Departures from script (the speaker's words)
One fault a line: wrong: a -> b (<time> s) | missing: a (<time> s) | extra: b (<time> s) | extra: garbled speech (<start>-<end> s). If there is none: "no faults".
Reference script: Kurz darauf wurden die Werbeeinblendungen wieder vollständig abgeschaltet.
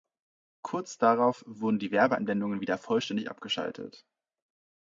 no faults